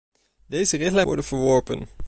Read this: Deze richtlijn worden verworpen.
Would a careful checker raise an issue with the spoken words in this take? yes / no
no